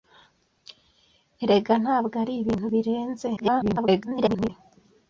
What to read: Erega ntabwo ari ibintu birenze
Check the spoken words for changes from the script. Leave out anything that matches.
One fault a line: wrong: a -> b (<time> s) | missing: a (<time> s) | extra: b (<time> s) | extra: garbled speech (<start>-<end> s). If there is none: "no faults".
extra: garbled speech (3.4-4.5 s)